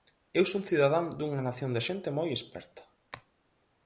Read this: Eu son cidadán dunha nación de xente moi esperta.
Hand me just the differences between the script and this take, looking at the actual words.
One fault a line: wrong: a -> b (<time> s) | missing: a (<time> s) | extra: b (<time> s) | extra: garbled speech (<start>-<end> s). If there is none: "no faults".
no faults